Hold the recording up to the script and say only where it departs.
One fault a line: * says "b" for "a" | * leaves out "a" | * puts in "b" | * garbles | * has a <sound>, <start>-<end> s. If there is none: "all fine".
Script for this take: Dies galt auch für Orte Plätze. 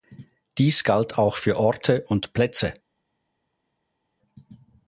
* puts in "und"